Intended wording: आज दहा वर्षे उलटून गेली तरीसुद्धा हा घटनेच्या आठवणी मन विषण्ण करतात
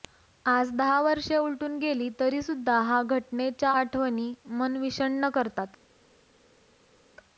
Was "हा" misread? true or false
false